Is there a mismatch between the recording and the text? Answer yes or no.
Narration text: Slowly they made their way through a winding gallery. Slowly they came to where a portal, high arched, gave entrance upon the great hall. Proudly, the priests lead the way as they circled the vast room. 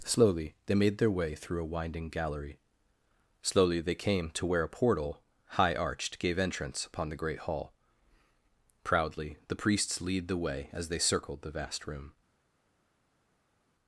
no